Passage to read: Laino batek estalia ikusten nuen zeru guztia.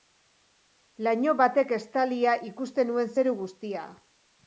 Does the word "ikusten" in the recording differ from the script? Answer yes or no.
no